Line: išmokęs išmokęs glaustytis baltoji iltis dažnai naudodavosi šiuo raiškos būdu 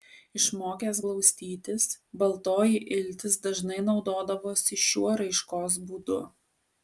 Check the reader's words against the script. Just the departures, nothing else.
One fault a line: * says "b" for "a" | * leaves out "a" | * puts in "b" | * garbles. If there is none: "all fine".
* leaves out "išmokęs"